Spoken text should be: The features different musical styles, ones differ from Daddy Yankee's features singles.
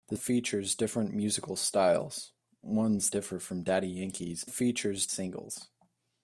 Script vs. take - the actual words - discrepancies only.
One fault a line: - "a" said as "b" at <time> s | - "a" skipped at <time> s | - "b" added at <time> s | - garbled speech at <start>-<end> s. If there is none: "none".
none